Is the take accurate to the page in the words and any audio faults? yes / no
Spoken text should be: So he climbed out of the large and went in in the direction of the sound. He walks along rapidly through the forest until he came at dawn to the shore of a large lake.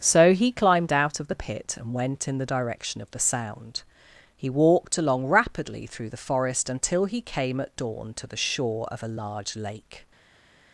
no